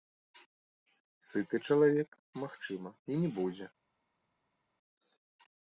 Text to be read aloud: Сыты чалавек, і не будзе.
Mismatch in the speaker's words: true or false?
true